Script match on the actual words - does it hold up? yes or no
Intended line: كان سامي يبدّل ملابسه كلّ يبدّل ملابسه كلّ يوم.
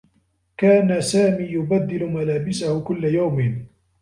no